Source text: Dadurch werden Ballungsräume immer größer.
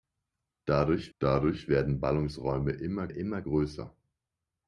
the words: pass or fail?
fail